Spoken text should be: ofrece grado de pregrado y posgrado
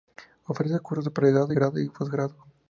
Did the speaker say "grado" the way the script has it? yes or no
no